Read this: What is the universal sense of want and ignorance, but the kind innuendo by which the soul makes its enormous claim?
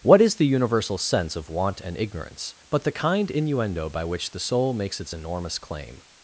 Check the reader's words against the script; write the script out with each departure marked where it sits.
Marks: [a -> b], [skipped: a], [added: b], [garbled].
What is the universal sense of want and ignorance, but the kind innuendo by which the soul makes its enormous claim?